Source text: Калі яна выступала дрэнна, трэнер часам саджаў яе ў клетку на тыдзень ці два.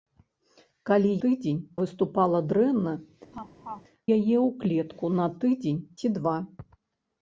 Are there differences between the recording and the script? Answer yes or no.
yes